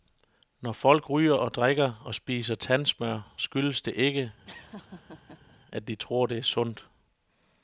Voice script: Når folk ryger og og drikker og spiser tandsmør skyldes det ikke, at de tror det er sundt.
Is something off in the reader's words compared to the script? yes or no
yes